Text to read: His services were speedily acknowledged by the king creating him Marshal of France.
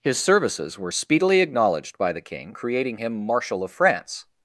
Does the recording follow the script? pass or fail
pass